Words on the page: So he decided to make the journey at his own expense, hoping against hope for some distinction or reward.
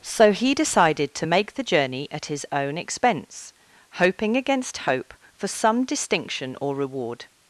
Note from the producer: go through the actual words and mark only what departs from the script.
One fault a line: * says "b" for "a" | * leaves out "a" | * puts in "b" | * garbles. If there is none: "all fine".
all fine